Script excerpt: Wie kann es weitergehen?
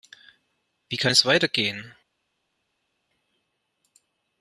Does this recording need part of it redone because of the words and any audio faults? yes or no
no